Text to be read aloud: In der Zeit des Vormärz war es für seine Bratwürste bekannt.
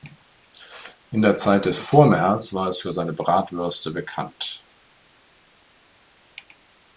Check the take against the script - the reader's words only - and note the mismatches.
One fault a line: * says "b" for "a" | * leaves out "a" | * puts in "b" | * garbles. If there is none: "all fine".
all fine